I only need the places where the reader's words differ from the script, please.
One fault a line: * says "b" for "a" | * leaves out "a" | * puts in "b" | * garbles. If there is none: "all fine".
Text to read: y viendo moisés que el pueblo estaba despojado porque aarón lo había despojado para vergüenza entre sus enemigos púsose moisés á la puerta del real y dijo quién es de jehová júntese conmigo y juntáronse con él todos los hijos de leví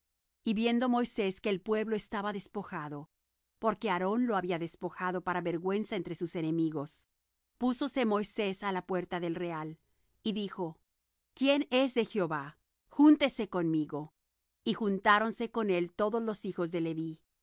all fine